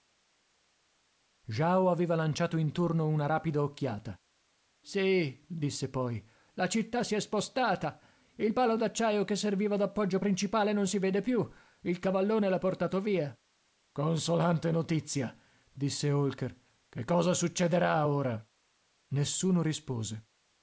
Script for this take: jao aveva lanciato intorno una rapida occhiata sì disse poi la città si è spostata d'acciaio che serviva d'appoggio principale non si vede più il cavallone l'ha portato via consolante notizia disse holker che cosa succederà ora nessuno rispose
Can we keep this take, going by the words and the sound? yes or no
no